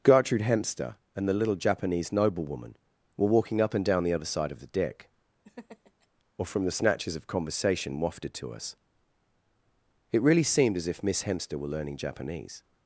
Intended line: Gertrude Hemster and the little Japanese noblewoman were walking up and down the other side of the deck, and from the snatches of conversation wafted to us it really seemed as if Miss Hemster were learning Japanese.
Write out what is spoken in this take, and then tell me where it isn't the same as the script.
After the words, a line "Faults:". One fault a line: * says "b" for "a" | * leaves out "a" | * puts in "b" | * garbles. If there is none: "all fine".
Gertrude Hemster and the little Japanese noblewoman were walking up and down the other side of the deck, or from the snatches of conversation wafted to us it really seemed as if Miss Hemster were learning Japanese.
Faults:
* says "or" for "and"